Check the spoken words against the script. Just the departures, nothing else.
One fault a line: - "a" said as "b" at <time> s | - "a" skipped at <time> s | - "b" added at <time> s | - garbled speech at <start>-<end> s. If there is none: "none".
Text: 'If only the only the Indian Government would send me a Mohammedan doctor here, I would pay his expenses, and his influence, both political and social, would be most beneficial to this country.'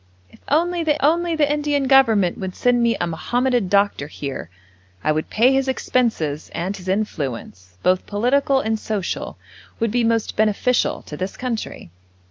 none